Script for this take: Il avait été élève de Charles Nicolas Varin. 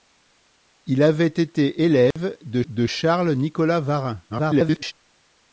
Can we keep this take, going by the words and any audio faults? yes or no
no